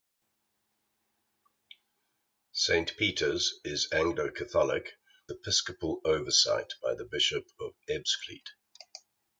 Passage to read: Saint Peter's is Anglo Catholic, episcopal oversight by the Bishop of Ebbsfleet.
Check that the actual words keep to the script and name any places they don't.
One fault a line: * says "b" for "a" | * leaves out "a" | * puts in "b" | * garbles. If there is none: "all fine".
all fine